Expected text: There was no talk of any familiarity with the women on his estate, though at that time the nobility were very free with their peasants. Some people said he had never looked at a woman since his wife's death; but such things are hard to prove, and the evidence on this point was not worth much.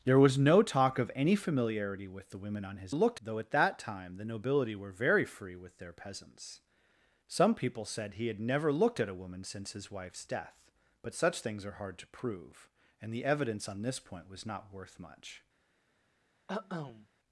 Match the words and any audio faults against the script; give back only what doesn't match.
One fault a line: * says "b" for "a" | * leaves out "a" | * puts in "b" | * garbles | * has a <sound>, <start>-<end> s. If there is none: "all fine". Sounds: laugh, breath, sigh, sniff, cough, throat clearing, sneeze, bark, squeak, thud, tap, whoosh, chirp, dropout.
* says "looked" for "estate"
* has a cough, 16.5-17.1 s